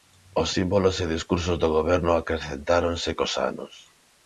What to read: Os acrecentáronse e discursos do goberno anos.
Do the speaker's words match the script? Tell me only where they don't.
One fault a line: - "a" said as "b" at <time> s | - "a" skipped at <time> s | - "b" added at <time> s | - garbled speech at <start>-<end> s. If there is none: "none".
- "acrecentáronse" said as "símbolos" at 0.6 s
- "acrecentáronse cos" added at 2.1 s